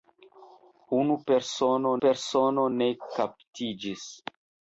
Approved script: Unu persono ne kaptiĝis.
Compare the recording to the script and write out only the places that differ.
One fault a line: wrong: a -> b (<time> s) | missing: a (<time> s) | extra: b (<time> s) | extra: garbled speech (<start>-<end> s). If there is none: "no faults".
extra: persono (2.0 s)